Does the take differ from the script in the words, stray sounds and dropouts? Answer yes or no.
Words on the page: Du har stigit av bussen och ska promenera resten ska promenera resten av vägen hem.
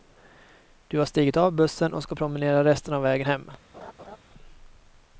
yes